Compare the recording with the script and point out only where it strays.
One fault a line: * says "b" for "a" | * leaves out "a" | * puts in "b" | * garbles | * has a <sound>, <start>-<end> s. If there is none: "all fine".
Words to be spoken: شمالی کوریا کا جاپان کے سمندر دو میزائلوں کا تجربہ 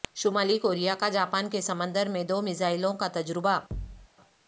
* puts in "میں"
* has a thud, 3.7-4.1 s